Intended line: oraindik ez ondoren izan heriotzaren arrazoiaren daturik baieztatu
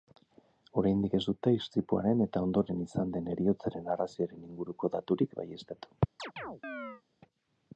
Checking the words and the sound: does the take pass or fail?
fail